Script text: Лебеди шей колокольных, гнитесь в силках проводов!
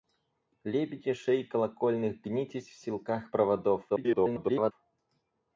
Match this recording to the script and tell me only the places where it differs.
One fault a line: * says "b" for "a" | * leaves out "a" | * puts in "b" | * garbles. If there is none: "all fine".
* garbles